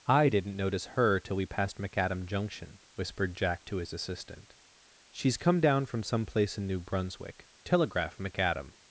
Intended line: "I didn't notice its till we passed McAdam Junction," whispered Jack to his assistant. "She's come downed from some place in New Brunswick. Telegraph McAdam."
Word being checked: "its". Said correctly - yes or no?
no